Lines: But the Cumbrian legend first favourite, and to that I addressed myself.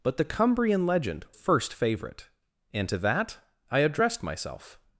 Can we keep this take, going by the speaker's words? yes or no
yes